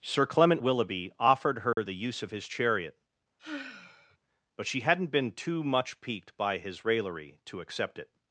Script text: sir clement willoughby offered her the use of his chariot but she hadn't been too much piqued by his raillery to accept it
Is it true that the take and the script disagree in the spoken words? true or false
false